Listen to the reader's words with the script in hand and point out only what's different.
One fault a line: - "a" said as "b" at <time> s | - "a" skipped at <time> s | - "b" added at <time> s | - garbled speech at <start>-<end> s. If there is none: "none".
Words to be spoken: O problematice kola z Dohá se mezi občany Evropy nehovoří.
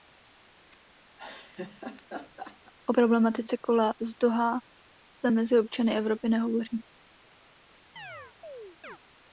none